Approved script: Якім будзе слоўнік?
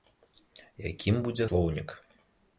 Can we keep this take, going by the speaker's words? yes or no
yes